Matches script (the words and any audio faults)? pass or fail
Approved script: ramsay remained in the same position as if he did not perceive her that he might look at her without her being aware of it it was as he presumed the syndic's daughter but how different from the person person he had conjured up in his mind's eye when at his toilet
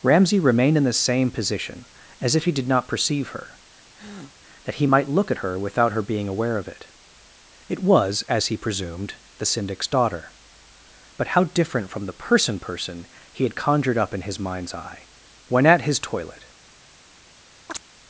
fail